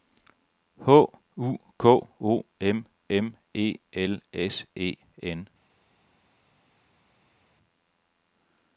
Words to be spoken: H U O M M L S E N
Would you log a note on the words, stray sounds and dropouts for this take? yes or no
yes